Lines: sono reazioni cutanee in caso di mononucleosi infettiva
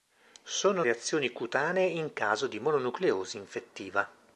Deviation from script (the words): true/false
false